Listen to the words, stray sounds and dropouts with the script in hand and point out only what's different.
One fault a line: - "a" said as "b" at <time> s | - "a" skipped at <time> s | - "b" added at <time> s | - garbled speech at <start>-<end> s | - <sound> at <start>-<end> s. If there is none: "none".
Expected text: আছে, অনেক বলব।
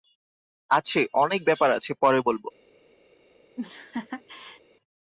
- "ব্যাপার আছে পরে" added at 1.4 s
- laugh at 3.6-4.6 s